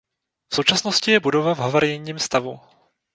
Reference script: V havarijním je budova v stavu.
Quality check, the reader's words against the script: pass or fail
fail